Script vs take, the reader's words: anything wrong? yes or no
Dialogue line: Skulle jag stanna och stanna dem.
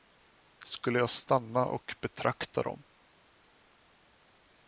yes